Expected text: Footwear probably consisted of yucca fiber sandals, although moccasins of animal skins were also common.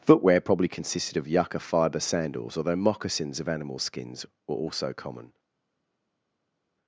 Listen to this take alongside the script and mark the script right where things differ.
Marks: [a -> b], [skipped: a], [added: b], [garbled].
Footwear probably consisted of yucca fiber sandals, although moccasins of animal skins were also common.